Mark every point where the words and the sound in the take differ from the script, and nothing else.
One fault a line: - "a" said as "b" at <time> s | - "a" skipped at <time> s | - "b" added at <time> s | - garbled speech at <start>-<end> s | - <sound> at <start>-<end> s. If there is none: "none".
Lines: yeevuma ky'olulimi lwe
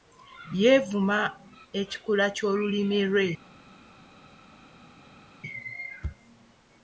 - "ekikula" added at 1.8 s